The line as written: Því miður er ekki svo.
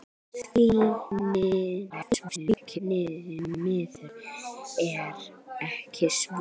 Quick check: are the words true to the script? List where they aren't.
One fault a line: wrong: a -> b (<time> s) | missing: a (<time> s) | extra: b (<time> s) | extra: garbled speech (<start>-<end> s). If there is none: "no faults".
extra: garbled speech (1.9-2.8 s)